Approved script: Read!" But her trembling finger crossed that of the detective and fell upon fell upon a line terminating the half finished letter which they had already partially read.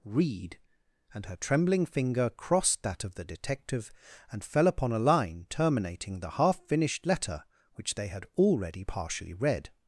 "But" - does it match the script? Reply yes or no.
no